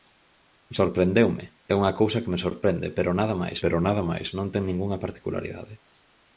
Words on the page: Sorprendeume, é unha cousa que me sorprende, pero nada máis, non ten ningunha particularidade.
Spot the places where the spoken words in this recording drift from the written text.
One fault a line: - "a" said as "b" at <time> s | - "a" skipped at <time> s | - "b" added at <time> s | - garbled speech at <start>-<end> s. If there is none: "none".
- "pero nada máis" added at 3.6 s